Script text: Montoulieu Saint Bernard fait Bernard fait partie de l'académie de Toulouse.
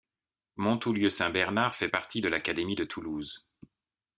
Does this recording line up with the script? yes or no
no